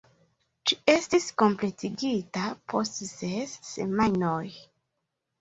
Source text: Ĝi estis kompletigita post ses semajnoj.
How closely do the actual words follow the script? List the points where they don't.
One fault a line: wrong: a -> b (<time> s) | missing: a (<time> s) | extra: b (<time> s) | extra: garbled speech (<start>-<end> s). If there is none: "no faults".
no faults